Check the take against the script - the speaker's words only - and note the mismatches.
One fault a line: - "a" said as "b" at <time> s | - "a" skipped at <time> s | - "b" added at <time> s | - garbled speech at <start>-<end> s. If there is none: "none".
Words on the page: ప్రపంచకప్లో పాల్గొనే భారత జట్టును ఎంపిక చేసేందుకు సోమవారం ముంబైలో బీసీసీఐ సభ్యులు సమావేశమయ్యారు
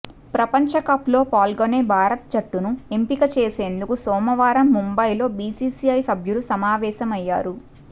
none